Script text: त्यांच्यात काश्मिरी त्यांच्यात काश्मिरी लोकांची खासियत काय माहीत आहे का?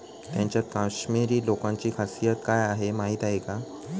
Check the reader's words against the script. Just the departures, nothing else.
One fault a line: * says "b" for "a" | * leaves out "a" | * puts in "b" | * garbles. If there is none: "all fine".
* leaves out "त्यांच्यात काश्मिरी"
* puts in "आहे"